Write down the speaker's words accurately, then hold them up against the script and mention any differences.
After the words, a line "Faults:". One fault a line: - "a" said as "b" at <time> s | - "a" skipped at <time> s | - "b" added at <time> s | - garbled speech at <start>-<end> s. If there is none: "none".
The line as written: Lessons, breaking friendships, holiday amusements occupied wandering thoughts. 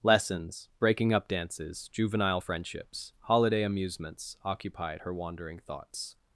Lessons, breaking up dances, juvenile friendships, holiday amusements occupied her wandering thoughts.
Faults:
- "up dances juvenile" added at 1.1 s
- "her" added at 5.0 s